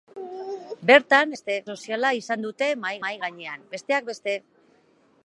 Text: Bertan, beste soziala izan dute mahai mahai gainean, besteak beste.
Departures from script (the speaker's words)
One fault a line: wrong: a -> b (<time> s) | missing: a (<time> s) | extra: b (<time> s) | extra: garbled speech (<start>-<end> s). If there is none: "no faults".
no faults